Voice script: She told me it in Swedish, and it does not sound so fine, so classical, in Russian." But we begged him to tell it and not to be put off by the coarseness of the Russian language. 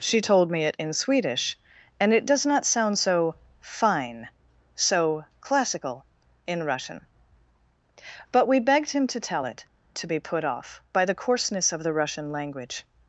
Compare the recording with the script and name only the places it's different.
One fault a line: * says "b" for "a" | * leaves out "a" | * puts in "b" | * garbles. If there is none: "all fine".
* leaves out "and not"